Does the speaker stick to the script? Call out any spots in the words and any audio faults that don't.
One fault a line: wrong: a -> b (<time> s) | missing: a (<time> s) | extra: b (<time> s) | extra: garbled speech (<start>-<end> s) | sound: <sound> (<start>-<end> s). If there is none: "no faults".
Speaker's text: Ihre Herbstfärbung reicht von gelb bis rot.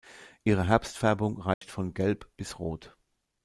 sound: dropout (1.5-1.6 s)